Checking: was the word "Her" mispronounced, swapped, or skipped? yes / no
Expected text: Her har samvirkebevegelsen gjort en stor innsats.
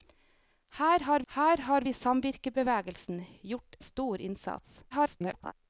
no